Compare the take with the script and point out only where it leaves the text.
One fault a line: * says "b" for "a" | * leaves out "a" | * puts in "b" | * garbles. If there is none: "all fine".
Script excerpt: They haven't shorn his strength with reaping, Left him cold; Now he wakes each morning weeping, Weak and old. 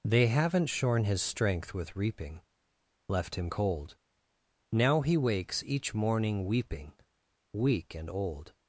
all fine